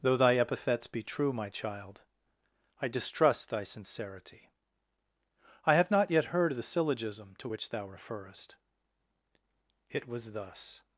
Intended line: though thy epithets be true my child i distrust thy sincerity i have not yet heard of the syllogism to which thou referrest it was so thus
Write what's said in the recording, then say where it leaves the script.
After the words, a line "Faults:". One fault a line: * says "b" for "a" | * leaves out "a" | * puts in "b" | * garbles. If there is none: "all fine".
though thy epithets be true my child i distrust thy sincerity i have not yet heard of the syllogism to which thou referrest it was thus
Faults:
* leaves out "so"